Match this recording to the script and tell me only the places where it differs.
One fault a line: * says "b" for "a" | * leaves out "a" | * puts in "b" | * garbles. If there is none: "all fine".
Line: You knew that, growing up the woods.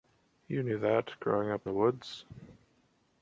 all fine